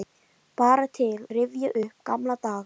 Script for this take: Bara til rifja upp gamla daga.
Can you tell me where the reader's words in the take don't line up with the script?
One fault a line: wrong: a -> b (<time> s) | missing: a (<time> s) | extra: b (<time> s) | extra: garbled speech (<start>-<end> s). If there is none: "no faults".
no faults